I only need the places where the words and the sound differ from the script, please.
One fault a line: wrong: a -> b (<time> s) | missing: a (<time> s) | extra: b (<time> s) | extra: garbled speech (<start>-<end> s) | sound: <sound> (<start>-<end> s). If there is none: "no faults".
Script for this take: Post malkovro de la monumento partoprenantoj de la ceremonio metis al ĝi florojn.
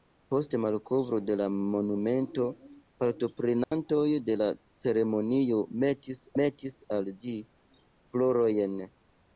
sound: dropout (3.6-3.7 s)
extra: metis (6.4 s)